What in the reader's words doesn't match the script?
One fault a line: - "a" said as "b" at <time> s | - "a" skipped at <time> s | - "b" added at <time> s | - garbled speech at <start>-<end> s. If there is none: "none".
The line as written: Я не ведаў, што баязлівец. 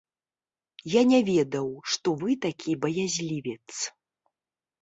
- "вы такі" added at 2.2 s